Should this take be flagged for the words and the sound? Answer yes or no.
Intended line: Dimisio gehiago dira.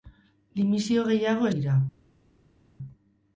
no